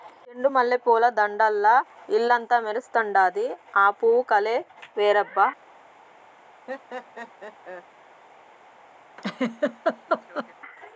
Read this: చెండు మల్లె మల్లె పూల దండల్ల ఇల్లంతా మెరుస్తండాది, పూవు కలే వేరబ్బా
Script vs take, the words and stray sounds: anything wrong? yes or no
yes